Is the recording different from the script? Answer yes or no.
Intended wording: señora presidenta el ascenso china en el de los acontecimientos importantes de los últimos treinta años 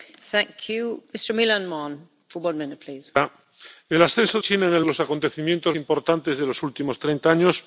no